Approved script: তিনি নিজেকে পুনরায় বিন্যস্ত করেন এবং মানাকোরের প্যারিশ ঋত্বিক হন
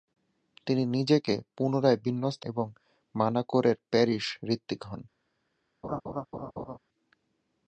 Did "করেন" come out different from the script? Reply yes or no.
yes